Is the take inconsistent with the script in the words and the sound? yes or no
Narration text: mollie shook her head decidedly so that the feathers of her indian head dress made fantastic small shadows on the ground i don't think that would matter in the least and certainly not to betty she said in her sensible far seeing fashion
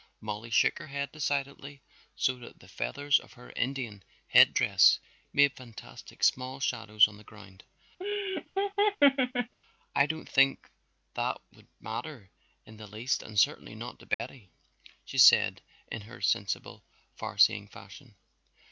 yes